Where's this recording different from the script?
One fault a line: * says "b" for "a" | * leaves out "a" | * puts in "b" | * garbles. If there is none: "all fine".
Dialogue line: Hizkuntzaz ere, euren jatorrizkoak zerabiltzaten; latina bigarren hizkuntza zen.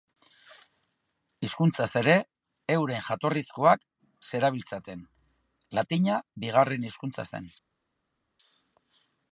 all fine